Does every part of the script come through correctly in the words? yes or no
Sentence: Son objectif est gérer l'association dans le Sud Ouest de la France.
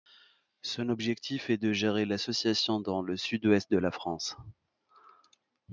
no